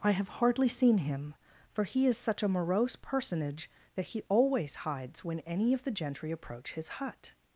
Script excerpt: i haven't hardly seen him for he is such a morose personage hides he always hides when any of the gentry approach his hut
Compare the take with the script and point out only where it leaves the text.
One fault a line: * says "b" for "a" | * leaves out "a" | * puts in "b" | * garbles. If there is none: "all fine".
* says "have" for "haven't"
* says "that" for "hides"